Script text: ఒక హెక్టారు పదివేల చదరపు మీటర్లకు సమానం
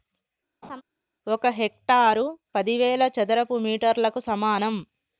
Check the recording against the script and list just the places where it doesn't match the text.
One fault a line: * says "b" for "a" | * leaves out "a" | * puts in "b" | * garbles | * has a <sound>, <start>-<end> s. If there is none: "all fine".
* has a laugh, 0.6-0.8 s